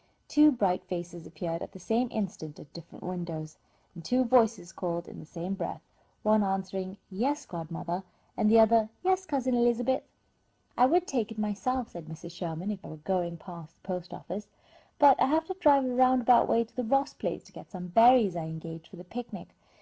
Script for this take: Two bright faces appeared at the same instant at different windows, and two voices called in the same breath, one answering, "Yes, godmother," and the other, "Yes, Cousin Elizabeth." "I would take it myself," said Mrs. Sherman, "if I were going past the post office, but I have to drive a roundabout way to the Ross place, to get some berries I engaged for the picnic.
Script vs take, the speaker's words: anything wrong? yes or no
no